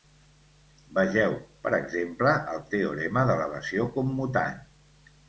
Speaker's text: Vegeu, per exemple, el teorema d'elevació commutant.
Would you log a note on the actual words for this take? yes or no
no